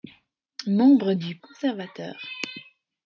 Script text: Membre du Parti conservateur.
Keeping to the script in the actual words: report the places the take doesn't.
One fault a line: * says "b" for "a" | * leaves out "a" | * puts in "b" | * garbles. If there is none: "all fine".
* leaves out "Parti"